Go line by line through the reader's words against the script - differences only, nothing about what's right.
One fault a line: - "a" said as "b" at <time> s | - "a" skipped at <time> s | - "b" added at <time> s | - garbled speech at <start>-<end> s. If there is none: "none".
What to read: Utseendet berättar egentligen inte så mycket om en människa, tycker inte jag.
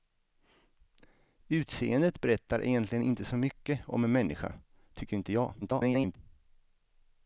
- garbled speech at 5.6-6.2 s